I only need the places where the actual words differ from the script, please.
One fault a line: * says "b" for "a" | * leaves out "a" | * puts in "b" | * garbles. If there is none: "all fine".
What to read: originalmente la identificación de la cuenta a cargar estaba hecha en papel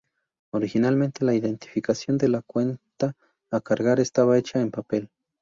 all fine